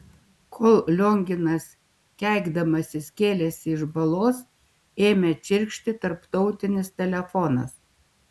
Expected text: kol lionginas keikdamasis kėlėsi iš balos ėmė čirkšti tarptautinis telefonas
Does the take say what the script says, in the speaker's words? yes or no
yes